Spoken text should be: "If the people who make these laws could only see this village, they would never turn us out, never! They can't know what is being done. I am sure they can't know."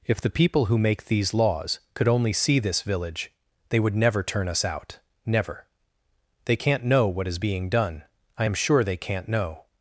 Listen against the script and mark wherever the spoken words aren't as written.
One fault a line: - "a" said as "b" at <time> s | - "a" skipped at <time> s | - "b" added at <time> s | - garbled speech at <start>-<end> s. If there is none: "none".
none